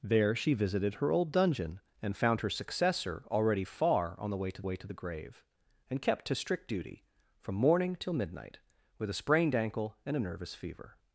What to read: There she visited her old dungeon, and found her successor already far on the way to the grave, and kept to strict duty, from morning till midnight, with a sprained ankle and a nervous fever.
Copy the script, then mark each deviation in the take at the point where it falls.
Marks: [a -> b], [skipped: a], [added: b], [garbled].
There she visited her old dungeon, and found her successor already far on the way to [added: way to] the grave, and kept to strict duty, from morning till midnight, with a sprained ankle and a nervous fever.